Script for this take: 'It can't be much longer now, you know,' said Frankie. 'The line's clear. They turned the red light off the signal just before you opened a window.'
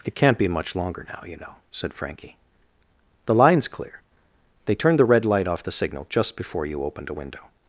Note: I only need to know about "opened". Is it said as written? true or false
true